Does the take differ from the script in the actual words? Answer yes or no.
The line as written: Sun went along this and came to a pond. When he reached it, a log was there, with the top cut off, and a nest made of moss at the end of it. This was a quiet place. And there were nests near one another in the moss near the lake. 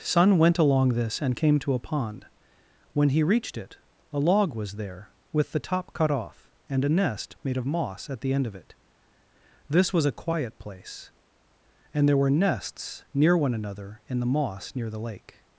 no